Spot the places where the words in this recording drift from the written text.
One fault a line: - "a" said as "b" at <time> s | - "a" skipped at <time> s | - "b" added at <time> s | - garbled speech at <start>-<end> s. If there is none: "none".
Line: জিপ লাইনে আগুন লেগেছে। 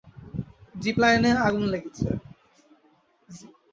none